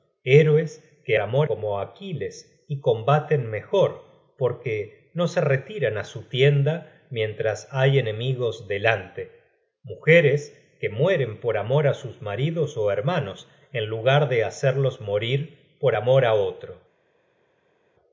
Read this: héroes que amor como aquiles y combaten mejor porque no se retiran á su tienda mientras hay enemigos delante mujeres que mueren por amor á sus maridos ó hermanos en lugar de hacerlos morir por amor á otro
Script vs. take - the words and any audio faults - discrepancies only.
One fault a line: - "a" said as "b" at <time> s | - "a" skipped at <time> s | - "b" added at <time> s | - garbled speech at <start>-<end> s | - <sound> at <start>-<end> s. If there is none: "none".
none